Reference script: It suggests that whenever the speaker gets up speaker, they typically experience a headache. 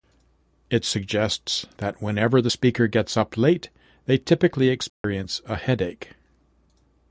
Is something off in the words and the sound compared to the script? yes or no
yes